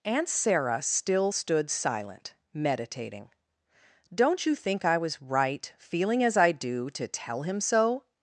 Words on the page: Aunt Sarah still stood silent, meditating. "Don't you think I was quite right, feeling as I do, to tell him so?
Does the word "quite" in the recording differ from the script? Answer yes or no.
yes